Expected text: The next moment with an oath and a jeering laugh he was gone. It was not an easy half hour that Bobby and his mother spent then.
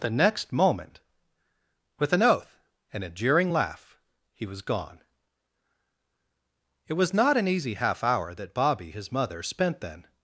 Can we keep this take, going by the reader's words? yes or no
no